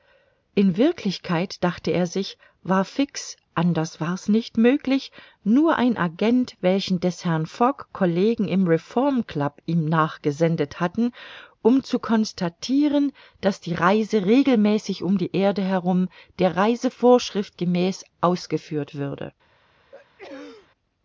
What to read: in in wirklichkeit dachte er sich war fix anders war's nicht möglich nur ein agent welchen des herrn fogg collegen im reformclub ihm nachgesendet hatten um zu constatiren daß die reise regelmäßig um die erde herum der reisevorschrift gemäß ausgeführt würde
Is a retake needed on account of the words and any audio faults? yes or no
yes